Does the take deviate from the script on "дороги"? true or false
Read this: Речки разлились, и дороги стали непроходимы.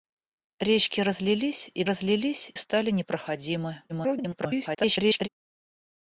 true